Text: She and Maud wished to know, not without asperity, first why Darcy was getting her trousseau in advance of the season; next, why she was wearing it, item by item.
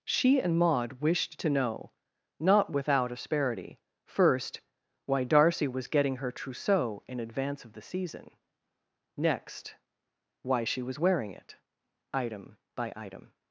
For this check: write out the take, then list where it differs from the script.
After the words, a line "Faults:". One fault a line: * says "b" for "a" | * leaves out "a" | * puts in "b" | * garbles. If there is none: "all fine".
She and Maud wished to know, not without asperity, first why Darcy was getting her trousseau in advance of the season; next, why she was wearing it, item by item.
Faults:
all fine